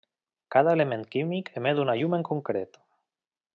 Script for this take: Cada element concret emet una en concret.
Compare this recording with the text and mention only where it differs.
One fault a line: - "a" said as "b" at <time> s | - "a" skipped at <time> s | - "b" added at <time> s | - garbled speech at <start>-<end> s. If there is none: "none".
- "concret" said as "químic" at 1.1 s
- "llum" added at 2.0 s